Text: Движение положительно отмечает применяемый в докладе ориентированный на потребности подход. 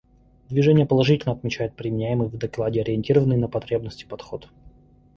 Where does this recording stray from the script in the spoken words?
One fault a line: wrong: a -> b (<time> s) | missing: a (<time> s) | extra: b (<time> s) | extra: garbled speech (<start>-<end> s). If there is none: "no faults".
no faults